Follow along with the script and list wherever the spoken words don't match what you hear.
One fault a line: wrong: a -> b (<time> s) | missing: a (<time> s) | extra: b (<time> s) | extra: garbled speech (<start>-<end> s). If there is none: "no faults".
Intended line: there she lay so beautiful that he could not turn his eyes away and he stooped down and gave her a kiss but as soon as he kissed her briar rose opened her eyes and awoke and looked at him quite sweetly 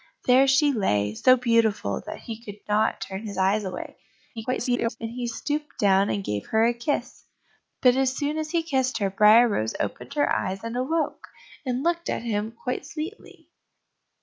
extra: garbled speech (4.4-5.0 s)